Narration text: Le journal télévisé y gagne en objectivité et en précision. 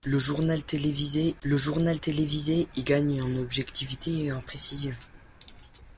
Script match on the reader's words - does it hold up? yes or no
no